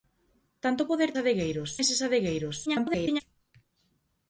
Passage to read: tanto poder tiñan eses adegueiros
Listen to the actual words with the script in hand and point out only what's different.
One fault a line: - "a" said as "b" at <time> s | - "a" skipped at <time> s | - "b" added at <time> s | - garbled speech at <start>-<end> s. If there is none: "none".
- "tiñan" said as "adegueiros" at 1.2 s
- garbled speech at 2.7-3.2 s